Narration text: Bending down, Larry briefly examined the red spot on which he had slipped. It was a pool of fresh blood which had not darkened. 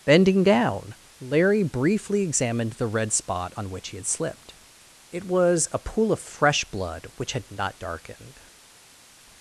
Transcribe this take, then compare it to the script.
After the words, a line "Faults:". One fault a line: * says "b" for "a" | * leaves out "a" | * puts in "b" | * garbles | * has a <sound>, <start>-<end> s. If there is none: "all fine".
Bending down, Larry briefly examined the red spot on which he had slipped. It was a pool of fresh blood which had not darkened.
Faults:
all fine